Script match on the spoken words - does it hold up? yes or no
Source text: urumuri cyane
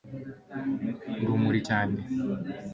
yes